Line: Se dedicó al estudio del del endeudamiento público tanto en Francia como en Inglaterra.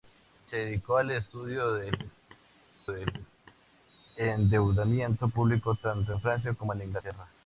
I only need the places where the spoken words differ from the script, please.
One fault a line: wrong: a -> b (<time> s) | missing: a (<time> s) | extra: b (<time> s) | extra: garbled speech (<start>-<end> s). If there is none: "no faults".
no faults